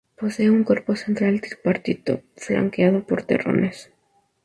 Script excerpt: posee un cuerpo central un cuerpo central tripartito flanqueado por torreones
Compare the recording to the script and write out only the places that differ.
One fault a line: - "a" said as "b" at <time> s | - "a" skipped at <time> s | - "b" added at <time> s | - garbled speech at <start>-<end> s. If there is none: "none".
- "un cuerpo central" skipped at 1.4 s